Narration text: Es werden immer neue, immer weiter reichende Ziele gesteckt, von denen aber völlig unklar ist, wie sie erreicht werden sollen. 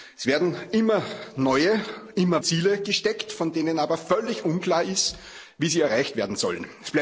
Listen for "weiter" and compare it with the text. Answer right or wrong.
wrong